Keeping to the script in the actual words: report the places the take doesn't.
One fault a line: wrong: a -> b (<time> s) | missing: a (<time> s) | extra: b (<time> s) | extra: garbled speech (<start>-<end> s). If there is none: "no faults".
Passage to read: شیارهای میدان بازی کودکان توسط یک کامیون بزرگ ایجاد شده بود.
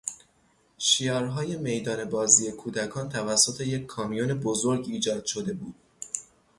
no faults